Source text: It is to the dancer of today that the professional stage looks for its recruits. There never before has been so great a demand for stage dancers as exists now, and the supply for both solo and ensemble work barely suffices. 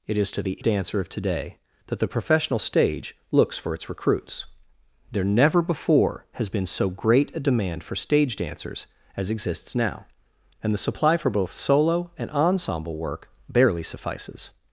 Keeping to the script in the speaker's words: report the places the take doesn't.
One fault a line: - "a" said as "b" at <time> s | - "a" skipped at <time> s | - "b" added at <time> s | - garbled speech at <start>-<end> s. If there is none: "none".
none